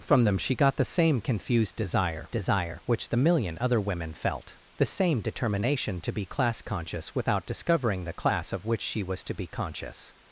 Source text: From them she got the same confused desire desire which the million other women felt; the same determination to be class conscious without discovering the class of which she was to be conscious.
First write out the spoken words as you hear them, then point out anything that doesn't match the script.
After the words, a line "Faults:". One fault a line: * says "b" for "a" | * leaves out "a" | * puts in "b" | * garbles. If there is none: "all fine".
From them she got the same confused desire desire which the million other women felt; the same determination to be class conscious without discovering the class of which she was to be conscious.
Faults:
all fine